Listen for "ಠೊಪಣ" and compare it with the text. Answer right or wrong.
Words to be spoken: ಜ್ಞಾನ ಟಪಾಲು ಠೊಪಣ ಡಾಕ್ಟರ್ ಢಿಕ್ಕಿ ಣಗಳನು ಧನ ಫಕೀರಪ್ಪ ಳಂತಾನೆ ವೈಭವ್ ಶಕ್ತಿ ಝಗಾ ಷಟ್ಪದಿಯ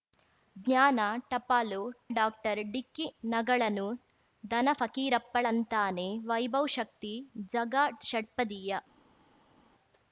wrong